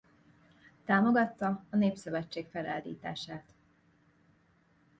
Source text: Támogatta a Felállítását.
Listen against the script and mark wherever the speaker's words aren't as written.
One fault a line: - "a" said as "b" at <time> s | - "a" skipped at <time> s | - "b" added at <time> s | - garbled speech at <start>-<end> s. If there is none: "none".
- "Népszövetség" added at 1.8 s